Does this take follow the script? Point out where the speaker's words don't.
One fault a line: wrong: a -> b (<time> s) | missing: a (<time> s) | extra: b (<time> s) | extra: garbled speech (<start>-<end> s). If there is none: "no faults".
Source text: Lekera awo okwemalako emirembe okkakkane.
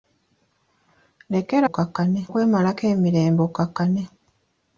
wrong: awo -> okkakkane (1.7 s)